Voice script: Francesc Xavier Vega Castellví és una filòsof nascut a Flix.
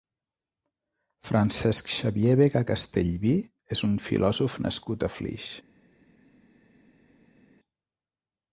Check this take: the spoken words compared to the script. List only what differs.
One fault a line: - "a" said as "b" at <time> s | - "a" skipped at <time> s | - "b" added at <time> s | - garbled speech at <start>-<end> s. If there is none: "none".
- "una" said as "un" at 3.9 s